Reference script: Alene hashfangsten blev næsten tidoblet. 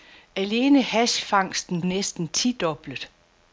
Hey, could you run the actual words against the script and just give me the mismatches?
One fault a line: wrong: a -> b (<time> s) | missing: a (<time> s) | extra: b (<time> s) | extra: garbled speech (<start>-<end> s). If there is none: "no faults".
missing: blev (1.8 s)